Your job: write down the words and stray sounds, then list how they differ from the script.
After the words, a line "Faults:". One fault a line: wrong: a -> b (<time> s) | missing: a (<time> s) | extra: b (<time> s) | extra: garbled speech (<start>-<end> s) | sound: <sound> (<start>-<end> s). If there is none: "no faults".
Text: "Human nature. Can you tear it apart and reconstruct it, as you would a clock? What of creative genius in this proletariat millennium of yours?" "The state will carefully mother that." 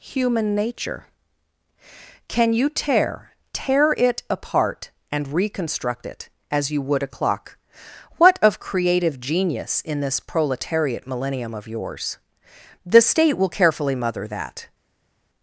"Human nature. Can you tear tear it apart and reconstruct it, as you would a clock? What of creative genius in this proletariat millennium of yours?" "The state will carefully mother that."
Faults:
extra: tear (3.5 s)